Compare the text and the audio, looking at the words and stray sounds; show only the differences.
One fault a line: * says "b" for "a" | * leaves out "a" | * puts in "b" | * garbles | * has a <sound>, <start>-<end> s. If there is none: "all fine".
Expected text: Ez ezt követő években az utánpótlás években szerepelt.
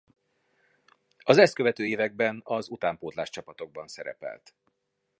* says "Az" for "Ez"
* says "csapatokban" for "években"